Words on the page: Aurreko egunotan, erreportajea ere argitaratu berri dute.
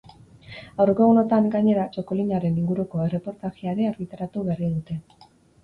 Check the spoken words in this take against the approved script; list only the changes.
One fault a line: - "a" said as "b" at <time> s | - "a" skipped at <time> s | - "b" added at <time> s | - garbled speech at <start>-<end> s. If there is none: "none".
- "gainera txakolinaren inguruko" added at 1.6 s